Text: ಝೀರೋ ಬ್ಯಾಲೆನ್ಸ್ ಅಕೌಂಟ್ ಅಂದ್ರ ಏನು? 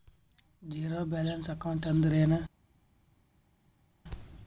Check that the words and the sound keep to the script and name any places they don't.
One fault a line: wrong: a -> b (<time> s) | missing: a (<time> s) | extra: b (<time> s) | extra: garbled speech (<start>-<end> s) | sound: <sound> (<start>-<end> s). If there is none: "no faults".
no faults